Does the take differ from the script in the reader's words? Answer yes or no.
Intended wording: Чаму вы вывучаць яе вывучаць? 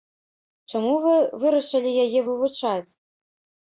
yes